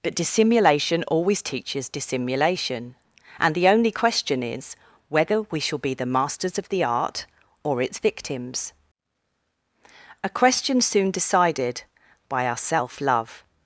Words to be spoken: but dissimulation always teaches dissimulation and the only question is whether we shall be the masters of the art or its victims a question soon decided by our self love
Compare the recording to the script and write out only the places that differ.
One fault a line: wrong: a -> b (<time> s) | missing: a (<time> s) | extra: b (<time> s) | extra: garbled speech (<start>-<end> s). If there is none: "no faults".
no faults